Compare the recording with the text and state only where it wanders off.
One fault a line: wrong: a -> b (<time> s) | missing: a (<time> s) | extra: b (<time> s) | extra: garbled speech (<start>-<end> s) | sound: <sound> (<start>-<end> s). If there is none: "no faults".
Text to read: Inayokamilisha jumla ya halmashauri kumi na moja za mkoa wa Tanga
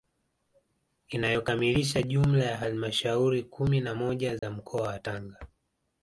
sound: dropout (4.4-4.4 s)